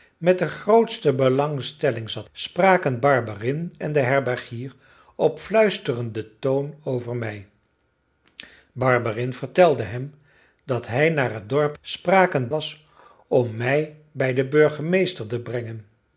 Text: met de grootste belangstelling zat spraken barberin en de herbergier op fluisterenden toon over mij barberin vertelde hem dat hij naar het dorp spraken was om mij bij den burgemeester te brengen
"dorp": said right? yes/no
yes